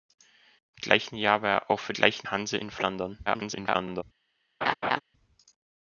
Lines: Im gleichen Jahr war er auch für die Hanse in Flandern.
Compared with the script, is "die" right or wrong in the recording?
wrong